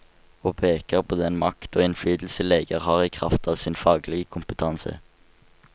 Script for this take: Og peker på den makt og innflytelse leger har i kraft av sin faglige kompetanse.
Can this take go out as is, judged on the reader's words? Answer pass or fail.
pass